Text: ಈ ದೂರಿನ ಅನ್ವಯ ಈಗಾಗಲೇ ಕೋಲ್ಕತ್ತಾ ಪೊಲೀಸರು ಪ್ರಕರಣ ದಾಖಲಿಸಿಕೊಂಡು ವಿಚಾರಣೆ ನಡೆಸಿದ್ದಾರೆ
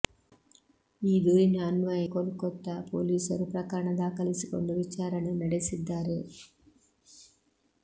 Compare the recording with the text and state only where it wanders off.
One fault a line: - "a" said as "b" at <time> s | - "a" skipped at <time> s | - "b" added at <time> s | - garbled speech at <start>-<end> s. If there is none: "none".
- "ಈಗಾಗಲೇ" skipped at 2.0 s